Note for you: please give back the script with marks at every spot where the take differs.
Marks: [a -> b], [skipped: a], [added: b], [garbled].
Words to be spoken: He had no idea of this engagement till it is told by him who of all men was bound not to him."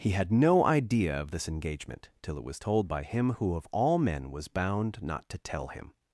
He had no idea of this engagement till it [is -> was] told by him who of all men was bound not to [added: tell] him."